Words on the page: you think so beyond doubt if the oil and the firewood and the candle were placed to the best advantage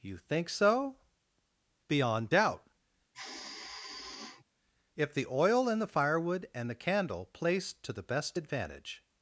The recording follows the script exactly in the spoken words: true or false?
false